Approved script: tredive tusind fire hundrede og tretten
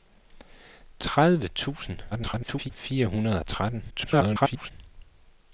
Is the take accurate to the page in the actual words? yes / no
no